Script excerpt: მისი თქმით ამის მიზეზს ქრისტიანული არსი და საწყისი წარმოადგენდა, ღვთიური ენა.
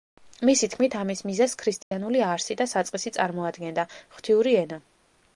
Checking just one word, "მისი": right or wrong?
right